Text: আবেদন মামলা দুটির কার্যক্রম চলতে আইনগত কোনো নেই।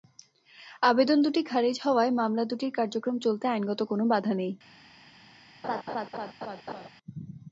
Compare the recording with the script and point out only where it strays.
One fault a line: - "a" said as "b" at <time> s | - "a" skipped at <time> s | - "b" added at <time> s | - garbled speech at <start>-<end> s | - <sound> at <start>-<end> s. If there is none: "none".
- "দুটি খারিজ হওয়ায়" added at 1.2 s
- "বাধা" added at 4.0 s
- laugh at 5.6-6.9 s